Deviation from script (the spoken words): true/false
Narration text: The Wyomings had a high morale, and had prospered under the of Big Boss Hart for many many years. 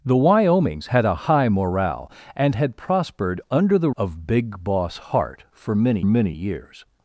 false